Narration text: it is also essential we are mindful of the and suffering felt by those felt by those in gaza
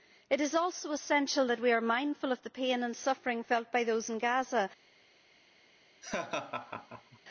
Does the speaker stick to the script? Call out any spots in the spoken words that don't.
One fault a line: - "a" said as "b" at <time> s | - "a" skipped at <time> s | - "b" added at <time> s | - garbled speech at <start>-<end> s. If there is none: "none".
- "that" added at 1.5 s
- "pain" added at 2.5 s
- "felt by those" skipped at 4.1 s